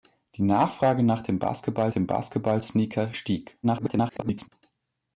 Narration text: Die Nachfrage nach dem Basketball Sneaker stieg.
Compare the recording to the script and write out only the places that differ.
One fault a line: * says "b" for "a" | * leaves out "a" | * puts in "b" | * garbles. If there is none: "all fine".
* puts in "dem Basketball"
* garbles